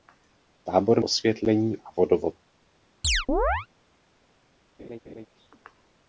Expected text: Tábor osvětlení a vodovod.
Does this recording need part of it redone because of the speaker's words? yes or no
no